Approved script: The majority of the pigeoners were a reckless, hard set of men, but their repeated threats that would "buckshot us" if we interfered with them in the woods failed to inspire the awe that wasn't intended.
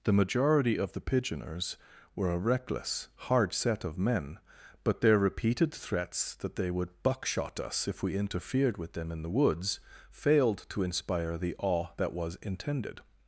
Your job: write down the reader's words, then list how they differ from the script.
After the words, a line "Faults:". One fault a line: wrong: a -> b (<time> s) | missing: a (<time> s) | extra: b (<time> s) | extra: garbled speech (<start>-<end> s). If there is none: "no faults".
The majority of the pigeoners were a reckless, hard set of men, but their repeated threats that they would "buckshot us" if we interfered with them in the woods failed to inspire the awe that was intended.
Faults:
extra: they (6.5 s)
wrong: wasn't -> was (12.1 s)